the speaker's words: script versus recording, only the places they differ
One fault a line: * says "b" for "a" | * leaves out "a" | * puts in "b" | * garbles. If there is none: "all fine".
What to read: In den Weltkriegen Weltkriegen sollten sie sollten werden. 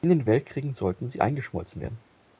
* leaves out "Weltkriegen"
* says "eingeschmolzen" for "sollten"